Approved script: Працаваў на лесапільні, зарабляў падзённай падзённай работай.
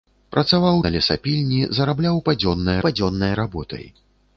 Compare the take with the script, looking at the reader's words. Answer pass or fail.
pass